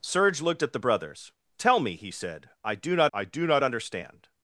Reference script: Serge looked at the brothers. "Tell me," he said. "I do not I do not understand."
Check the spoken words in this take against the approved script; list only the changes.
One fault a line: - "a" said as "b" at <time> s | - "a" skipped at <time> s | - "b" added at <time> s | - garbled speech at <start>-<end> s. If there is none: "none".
none